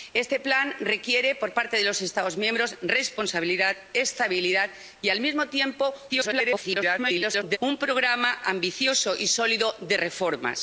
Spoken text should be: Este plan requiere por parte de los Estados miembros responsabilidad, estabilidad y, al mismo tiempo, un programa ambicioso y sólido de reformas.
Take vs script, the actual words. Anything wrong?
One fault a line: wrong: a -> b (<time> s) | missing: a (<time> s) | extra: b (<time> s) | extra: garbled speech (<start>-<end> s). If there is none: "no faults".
extra: garbled speech (6.1-7.6 s)